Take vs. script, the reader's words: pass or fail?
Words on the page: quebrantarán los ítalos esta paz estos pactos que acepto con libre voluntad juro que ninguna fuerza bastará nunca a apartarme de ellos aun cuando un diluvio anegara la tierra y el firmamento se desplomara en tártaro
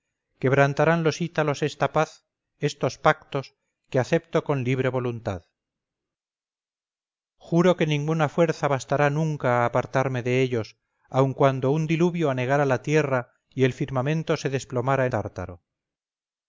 pass